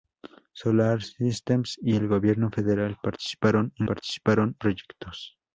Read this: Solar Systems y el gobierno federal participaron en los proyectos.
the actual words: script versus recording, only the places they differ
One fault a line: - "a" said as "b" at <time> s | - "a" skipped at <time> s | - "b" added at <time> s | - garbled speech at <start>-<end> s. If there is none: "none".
- "los" said as "participaron" at 3.9 s